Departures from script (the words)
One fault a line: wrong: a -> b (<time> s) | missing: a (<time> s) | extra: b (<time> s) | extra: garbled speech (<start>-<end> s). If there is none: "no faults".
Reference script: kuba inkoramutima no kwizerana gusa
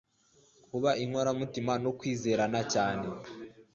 wrong: gusa -> cyane (2.7 s)